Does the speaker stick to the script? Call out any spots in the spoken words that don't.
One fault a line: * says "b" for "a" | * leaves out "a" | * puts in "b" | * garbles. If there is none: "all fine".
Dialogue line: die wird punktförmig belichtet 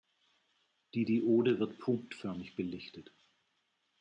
* puts in "diode"